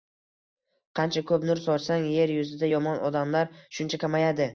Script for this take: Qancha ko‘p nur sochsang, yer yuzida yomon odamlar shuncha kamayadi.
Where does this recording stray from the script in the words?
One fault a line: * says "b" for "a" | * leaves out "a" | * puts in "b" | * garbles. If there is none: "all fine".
all fine